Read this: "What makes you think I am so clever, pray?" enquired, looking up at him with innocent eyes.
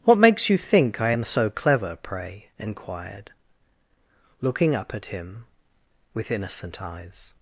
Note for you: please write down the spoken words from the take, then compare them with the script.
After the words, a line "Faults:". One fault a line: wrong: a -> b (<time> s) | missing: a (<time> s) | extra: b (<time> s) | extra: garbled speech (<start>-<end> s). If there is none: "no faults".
"What makes you think I am so clever, pray?" enquired, looking up at him with innocent eyes.
Faults:
no faults